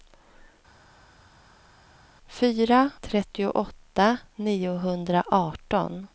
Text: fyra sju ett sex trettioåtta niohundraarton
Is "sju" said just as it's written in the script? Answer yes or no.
no